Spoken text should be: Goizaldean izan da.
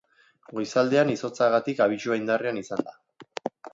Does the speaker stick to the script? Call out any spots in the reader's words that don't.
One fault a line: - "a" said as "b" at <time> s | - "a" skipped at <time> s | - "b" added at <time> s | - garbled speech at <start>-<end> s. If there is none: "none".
- "izotzagatik abisua indarrean" added at 1.1 s